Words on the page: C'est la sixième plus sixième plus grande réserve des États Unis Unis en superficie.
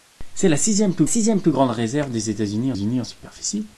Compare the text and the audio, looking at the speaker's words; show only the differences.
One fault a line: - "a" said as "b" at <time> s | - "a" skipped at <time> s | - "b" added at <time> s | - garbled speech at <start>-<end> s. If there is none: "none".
none